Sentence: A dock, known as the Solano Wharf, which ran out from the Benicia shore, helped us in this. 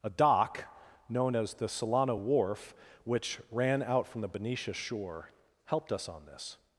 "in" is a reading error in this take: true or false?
true